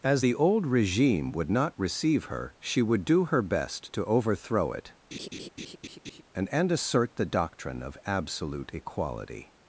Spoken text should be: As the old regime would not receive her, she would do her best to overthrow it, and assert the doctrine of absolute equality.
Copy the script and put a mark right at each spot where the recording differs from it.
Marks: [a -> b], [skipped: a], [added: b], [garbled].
As the old regime would not receive her, she would do her best to overthrow it, and [added: and] assert the doctrine of absolute equality.